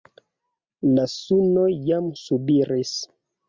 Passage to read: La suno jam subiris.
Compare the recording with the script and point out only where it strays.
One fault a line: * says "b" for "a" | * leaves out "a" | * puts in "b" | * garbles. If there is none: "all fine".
all fine